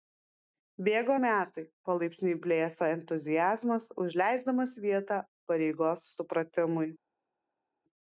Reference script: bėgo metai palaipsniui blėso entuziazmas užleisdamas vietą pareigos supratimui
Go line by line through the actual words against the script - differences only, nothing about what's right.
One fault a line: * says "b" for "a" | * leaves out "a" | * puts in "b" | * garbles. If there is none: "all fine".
all fine